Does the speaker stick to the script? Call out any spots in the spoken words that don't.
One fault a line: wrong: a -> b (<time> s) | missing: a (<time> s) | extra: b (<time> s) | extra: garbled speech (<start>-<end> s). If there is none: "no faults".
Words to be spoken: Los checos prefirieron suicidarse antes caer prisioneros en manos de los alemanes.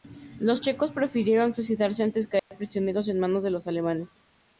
no faults